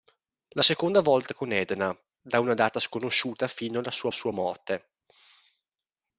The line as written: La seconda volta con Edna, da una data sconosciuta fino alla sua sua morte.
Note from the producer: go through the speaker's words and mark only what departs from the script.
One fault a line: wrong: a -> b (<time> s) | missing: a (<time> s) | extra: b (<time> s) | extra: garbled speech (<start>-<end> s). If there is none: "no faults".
no faults